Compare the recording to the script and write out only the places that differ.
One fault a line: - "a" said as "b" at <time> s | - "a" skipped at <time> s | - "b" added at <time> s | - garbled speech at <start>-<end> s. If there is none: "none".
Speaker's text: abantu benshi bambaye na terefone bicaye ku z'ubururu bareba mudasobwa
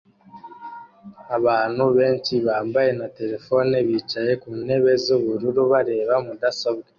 - "ntebe" added at 4.6 s